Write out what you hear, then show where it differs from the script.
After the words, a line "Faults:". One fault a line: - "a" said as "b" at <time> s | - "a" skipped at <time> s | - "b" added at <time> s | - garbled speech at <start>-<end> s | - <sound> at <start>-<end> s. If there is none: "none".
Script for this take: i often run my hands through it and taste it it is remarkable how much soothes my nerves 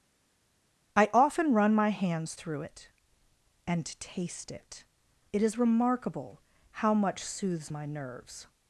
i often run my hands through it and taste it it is remarkable how much soothes my nerves
Faults:
none